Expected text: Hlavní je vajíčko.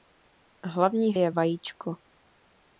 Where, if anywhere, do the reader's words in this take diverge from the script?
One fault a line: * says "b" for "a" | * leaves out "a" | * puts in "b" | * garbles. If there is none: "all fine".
all fine